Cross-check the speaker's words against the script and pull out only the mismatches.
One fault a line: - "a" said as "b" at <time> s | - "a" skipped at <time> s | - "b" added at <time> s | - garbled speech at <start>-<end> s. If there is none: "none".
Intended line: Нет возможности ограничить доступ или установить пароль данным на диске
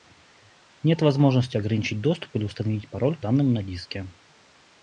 none